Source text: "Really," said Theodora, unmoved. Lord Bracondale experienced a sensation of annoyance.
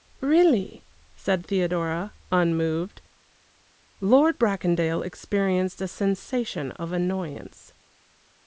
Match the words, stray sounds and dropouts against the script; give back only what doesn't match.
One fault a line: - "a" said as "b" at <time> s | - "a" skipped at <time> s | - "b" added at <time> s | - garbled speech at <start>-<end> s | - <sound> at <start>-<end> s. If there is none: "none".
none